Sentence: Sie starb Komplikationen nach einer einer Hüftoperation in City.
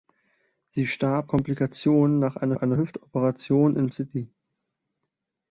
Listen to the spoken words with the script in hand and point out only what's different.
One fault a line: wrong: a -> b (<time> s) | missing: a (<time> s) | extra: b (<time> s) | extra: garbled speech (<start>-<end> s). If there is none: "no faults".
no faults